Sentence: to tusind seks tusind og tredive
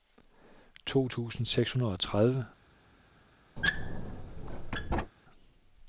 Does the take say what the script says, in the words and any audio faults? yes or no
no